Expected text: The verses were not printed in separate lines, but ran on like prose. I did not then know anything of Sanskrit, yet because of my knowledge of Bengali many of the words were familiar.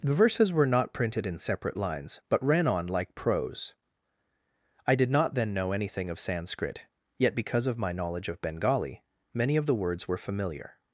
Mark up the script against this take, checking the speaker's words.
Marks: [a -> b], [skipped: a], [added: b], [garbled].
The verses were not printed in separate lines, but ran on like prose. I did not then know anything of Sanskrit, yet because of my knowledge of Bengali many of the words were familiar.